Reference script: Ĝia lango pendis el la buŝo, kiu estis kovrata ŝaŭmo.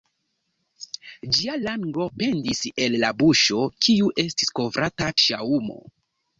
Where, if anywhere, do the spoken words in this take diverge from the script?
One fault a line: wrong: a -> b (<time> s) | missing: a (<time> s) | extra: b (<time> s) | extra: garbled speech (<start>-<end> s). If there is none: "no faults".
no faults